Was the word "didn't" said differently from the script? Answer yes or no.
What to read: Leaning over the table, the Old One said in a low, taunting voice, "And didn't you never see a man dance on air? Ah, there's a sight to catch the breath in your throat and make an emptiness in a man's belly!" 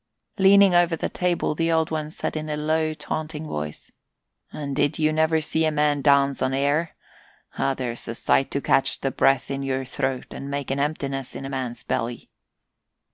yes